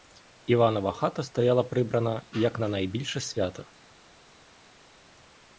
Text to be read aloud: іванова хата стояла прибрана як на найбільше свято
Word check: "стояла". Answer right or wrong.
right